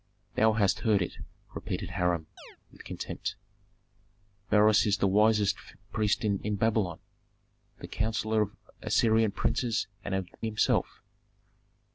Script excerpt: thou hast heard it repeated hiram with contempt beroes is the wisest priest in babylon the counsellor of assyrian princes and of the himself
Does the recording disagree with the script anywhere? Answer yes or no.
no